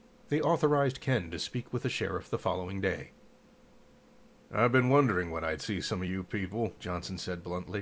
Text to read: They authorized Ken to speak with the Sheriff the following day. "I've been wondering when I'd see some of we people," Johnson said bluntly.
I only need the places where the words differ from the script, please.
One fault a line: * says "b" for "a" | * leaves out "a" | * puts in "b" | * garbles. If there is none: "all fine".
* says "you" for "we"